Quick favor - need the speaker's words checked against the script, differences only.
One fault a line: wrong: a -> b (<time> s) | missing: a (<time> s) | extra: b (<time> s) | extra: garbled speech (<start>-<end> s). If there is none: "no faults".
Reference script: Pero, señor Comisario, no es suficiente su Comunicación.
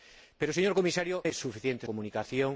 missing: no (1.2 s)
missing: su (1.9 s)